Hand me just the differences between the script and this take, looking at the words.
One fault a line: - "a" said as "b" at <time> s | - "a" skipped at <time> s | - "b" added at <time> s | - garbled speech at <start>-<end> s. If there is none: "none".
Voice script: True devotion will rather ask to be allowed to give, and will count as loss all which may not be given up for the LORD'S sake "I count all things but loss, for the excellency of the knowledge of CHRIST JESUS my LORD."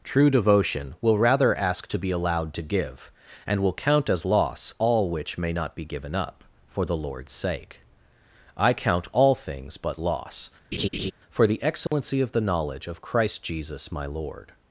none